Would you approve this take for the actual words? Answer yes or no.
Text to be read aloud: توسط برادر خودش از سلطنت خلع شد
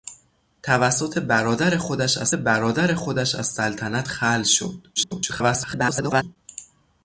no